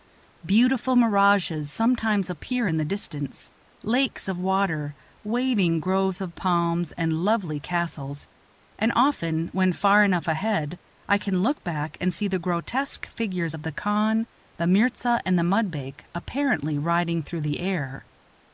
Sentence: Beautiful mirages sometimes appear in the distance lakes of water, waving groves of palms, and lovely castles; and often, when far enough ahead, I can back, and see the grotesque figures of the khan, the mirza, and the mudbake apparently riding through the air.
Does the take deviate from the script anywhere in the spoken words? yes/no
yes